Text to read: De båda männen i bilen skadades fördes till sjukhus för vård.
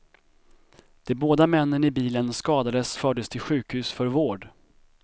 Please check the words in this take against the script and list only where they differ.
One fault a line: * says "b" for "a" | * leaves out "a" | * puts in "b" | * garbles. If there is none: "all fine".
all fine